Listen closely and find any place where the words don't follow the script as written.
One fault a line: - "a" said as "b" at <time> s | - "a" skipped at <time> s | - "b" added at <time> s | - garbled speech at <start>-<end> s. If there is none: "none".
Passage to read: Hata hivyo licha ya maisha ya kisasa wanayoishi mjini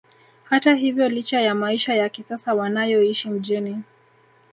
none